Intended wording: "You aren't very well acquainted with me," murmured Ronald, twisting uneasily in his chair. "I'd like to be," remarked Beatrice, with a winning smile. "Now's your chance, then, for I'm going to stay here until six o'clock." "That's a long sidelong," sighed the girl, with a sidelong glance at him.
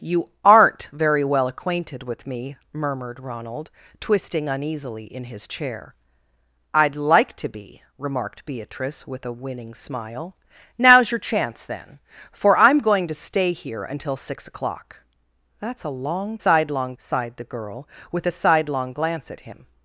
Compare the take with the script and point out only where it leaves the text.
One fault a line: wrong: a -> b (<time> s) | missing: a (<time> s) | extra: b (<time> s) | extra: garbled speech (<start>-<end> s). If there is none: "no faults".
no faults